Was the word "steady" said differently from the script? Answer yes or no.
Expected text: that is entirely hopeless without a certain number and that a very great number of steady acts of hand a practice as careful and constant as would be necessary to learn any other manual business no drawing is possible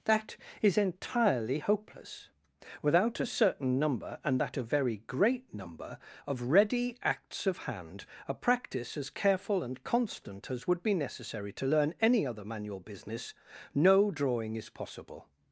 yes